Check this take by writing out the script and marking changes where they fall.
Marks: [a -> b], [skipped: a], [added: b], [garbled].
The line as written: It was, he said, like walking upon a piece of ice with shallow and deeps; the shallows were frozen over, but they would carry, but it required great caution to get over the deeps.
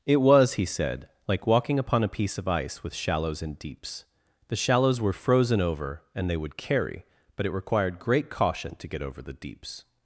It was, he said, like walking upon a piece of ice with [shallow -> shallows] and deeps; the shallows were frozen over, [but -> and] they would carry, but it required great caution to get over the deeps.